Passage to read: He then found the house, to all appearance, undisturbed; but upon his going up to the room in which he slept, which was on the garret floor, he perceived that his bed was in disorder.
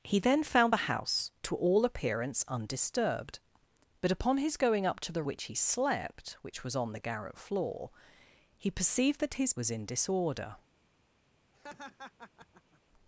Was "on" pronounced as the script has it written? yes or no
yes